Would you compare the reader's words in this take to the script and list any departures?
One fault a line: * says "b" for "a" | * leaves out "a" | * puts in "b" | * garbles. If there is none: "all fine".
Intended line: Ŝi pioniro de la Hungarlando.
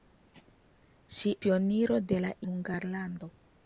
all fine